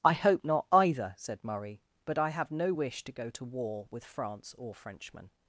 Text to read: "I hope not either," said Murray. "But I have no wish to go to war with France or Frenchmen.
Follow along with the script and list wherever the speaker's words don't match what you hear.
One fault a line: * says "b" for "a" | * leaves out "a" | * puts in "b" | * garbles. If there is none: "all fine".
all fine